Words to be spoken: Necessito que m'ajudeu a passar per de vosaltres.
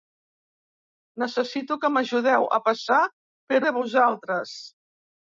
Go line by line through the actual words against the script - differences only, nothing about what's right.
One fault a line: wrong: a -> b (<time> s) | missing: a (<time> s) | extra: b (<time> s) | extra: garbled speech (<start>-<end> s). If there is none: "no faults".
no faults